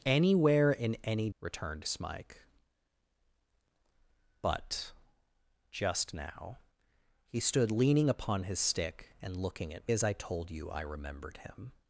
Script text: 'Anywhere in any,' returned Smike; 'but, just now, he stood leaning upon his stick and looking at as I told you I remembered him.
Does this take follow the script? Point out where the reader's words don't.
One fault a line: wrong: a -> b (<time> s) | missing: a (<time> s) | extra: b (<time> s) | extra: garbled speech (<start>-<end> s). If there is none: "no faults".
no faults